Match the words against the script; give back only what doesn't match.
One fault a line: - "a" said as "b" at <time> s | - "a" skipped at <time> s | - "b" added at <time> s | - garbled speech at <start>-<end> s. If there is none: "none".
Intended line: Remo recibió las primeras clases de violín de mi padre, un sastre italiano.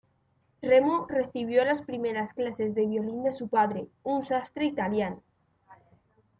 - "mi" said as "su" at 3.3 s